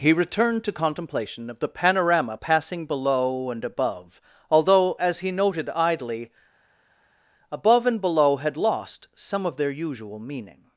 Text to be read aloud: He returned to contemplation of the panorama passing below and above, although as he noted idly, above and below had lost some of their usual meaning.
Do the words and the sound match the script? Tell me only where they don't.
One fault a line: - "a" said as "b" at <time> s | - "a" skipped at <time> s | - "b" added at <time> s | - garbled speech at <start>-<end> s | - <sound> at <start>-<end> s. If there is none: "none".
none